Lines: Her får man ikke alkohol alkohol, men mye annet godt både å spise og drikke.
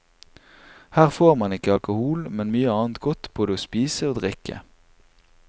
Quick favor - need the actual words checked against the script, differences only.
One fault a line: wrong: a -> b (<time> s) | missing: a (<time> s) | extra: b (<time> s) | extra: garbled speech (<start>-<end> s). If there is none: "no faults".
missing: alkohol (2.2 s)